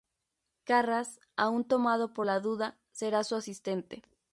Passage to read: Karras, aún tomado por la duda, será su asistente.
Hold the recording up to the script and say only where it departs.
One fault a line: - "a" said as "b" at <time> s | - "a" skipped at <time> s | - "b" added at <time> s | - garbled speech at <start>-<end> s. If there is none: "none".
none